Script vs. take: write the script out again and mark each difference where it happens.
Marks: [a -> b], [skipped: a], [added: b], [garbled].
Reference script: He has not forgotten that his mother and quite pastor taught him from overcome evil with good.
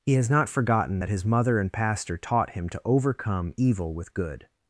He has not forgotten that his mother and [skipped: quite] pastor taught him [from -> to] overcome evil with good.